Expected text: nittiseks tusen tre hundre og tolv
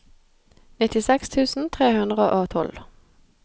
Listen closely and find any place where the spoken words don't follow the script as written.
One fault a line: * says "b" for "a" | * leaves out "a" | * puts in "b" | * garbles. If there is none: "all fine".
all fine